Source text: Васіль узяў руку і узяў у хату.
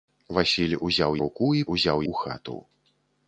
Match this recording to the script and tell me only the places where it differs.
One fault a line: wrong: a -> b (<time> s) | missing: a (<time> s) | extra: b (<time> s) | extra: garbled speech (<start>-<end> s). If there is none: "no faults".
no faults